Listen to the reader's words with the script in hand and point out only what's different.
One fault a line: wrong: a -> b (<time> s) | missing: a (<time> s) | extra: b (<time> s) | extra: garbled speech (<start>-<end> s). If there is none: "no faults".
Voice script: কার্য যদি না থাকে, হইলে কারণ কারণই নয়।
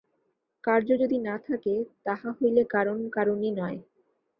extra: তাহা (2.0 s)